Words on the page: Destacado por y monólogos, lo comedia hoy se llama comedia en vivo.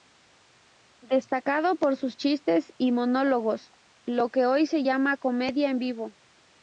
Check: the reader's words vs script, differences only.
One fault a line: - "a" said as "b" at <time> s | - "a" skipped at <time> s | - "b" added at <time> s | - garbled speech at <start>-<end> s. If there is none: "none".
- "sus chistes" added at 1.9 s
- "comedia" said as "que" at 4.3 s